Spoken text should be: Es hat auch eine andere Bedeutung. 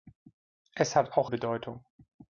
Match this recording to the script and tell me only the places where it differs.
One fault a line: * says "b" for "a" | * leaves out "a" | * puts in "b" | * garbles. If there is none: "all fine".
* leaves out "eine andere"